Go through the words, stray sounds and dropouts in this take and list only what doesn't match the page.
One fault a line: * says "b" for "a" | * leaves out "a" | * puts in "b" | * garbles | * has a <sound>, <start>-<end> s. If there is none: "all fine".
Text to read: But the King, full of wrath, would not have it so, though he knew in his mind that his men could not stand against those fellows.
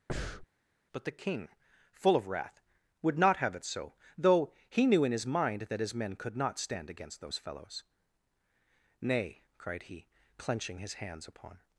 * has a breath, 0.1-0.5 s
* puts in "Nay cried he clenching his hands upon"